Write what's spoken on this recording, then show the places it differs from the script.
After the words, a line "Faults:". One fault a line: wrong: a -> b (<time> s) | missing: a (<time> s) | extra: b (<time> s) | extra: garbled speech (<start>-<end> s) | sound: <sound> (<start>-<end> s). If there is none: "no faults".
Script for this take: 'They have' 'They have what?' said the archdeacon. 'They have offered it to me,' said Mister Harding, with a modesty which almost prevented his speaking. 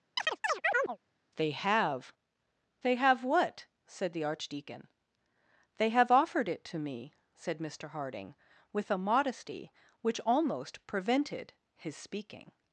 'They have' 'They have what?' said the archdeacon. 'They have offered it to me,' said Mister Harding, with a modesty which almost prevented his speaking.
Faults:
sound: chirp (0.2-1.0 s)